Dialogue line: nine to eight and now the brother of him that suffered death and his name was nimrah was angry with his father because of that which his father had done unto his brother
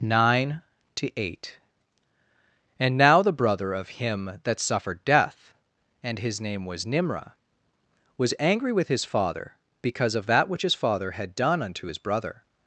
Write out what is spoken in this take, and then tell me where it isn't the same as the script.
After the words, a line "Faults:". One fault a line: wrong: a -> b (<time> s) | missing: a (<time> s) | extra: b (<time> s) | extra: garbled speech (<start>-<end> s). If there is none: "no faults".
nine to eight and now the brother of him that suffered death and his name was nimrah was angry with his father because of that which his father had done unto his brother
Faults:
no faults